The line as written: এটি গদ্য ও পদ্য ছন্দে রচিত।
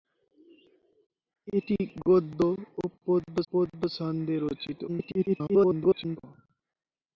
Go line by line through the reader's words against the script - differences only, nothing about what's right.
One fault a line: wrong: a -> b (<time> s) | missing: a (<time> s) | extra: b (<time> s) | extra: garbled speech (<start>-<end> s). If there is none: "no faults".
extra: পদ্য (3.5 s)
extra: garbled speech (4.9-6.2 s)